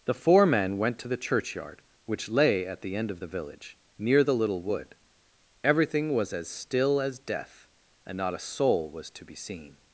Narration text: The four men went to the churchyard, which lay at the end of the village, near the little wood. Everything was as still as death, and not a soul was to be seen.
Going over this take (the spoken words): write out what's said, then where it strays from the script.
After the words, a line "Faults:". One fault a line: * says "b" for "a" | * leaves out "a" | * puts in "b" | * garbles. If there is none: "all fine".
The four men went to the churchyard, which lay at the end of the village, near the little wood. Everything was as still as death, and not a soul was to be seen.
Faults:
all fine